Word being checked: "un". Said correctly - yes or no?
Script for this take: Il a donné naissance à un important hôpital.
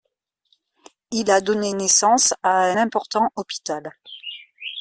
no